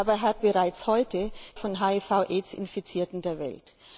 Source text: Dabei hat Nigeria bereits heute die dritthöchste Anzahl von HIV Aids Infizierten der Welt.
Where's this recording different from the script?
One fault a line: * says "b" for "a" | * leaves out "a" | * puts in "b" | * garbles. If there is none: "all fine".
* leaves out "Nigeria"
* leaves out "die dritthöchste Anzahl"